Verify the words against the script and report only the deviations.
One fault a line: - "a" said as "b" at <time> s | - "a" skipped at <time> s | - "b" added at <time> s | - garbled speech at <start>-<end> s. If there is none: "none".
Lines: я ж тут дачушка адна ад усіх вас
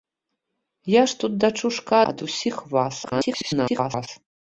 - "адна" skipped at 1.9 s
- garbled speech at 3.0-4.1 s